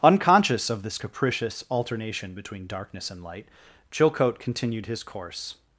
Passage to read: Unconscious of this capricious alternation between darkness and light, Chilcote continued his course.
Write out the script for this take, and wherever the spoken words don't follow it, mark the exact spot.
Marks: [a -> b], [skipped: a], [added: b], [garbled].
Unconscious of this capricious alternation between darkness and light, Chilcote continued his course.